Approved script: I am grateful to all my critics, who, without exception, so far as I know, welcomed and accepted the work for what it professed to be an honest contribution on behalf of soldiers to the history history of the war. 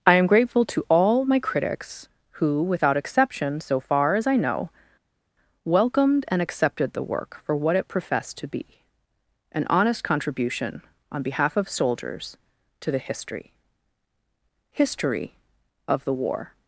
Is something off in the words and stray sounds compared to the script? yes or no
no